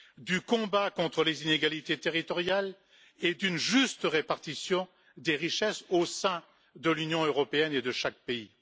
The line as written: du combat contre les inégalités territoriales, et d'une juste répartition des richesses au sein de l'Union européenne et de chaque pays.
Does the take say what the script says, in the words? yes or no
yes